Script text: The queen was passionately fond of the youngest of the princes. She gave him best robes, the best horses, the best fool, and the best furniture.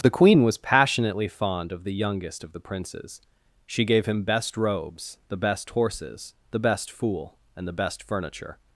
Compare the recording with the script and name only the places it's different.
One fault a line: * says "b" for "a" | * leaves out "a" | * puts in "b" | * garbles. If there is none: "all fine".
all fine